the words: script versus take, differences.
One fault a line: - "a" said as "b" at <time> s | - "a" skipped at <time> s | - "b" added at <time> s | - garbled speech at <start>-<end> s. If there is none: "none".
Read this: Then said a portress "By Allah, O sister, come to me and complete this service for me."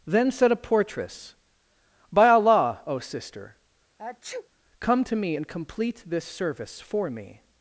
none